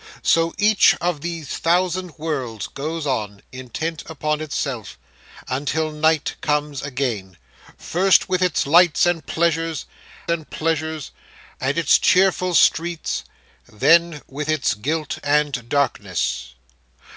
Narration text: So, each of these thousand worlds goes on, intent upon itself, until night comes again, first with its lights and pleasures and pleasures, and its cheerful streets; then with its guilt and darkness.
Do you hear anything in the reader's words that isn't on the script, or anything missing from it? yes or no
no